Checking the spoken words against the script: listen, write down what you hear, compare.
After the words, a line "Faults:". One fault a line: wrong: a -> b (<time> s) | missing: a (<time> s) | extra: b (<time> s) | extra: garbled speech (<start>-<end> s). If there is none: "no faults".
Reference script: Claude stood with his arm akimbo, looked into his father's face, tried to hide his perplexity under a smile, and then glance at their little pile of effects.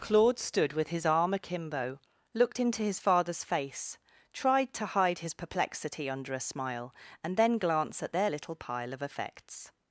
Claude stood with his arm akimbo, looked into his father's face, tried to hide his perplexity under a smile, and then glance at their little pile of effects.
Faults:
no faults